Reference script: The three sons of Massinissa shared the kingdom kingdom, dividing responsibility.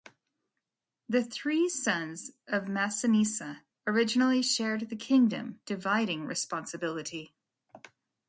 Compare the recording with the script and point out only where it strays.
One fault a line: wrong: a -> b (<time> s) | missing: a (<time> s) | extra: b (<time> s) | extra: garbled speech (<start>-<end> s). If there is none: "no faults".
extra: originally (3.8 s)
missing: kingdom (5.6 s)